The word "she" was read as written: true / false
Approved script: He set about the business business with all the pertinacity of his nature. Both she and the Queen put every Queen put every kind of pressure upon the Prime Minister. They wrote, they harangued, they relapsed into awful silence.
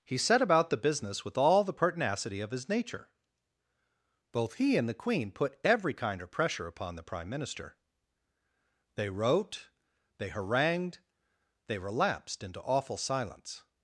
false